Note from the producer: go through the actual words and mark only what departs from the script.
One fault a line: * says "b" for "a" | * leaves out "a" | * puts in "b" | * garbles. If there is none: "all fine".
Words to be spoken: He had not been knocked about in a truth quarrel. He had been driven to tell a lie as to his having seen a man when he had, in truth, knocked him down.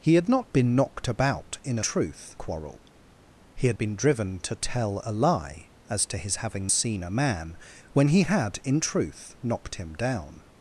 all fine